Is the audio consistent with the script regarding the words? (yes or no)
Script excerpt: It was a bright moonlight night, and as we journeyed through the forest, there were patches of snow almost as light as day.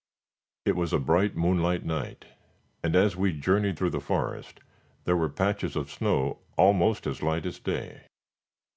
yes